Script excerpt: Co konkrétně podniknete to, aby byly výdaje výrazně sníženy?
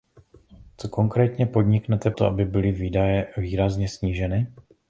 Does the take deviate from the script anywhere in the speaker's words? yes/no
no